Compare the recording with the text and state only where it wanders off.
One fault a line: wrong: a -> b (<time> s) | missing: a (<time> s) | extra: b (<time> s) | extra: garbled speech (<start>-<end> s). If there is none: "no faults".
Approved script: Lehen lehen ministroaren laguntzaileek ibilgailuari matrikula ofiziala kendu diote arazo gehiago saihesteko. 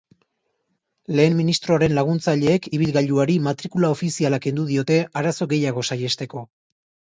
missing: lehen (1.4 s)